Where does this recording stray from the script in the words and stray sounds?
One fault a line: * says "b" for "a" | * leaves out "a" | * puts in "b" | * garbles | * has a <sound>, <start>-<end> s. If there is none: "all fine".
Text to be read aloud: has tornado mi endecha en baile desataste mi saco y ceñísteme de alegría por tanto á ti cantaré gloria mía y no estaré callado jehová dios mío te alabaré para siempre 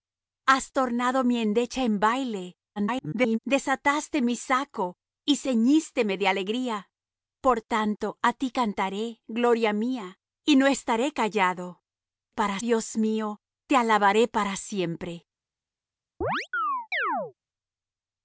* garbles
* says "para" for "jehová"
* has a chirp, 16.2-17.3 s